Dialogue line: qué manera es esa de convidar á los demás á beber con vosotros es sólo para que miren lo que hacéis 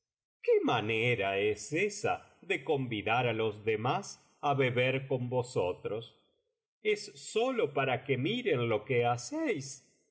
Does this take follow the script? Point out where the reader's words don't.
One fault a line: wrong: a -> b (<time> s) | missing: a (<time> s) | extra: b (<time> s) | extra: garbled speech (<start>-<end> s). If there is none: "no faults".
no faults